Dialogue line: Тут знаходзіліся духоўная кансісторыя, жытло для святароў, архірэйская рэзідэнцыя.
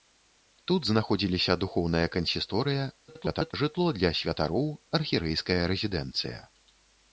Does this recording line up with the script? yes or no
no